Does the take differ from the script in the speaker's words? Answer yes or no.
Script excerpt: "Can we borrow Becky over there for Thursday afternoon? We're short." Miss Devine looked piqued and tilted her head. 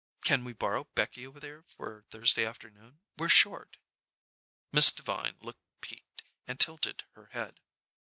no